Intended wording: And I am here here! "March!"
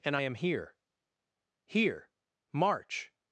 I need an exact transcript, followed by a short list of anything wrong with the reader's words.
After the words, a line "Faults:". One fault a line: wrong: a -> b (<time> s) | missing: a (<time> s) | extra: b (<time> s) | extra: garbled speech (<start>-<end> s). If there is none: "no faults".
And I am here here! "March!"
Faults:
no faults